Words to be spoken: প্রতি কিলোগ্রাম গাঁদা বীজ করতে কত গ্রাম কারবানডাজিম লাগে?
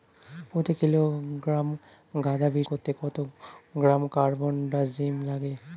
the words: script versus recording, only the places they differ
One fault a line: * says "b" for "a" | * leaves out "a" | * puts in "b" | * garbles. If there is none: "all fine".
all fine